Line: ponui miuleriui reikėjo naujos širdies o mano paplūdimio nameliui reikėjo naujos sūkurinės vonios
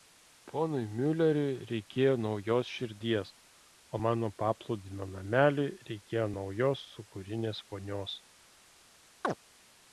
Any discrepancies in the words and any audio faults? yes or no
yes